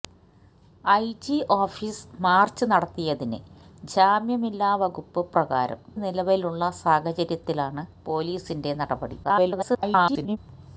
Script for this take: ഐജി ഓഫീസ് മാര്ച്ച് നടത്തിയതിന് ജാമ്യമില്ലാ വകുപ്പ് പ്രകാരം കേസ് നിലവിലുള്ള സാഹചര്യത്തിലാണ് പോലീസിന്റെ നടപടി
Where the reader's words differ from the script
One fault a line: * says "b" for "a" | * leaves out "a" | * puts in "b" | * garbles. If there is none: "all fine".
* leaves out "കേസ്"
* garbles